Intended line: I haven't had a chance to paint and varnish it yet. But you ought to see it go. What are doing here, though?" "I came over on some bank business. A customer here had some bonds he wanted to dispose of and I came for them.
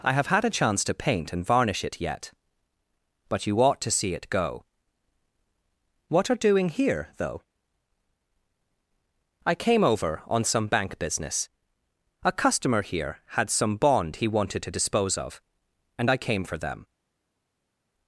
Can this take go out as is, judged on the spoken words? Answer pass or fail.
fail